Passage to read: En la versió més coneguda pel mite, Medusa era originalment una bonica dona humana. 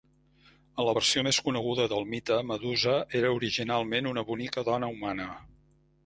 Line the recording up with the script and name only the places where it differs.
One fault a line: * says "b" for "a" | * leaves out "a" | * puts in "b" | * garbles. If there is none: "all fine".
* says "del" for "pel"